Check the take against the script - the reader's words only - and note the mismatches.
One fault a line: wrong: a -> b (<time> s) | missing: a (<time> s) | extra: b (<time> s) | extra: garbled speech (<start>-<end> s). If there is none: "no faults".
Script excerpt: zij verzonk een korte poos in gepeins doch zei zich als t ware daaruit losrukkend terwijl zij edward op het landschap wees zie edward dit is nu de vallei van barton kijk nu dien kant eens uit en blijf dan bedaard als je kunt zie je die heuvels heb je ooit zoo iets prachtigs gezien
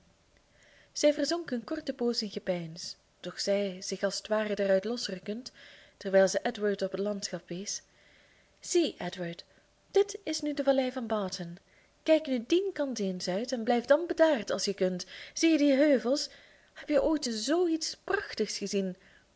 no faults